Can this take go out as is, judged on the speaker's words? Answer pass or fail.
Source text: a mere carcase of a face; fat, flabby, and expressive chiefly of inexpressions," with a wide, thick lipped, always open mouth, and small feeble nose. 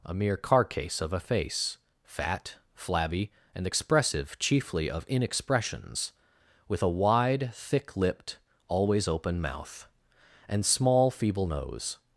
pass